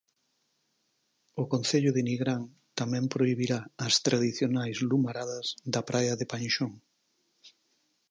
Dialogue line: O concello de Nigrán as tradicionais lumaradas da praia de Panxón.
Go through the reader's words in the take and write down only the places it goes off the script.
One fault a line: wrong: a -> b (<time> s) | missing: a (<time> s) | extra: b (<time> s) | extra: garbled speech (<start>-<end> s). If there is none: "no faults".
extra: tamén prohibirá (2.8 s)